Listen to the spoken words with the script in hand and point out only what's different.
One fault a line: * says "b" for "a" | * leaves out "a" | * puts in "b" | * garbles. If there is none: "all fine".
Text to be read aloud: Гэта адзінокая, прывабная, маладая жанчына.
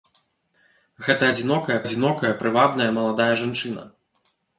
* puts in "адзінокая"